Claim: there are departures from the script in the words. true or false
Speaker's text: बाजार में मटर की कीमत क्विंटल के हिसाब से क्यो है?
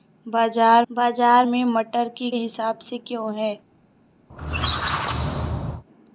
true